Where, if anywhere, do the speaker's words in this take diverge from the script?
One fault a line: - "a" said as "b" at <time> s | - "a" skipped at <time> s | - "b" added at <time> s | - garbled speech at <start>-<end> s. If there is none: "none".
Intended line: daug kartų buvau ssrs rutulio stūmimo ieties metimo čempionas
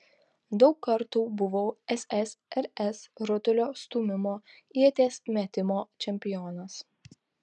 none